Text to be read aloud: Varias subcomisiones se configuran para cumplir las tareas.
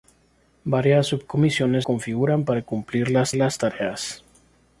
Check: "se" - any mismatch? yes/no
yes